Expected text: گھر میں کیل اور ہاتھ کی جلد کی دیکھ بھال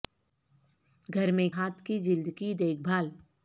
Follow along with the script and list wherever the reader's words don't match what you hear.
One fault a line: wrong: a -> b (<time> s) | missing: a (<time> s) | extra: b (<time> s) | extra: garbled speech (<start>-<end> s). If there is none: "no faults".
missing: کیل اور (1.5 s)